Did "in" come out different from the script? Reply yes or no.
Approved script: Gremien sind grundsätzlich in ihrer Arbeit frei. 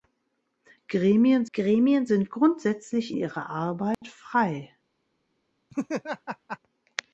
yes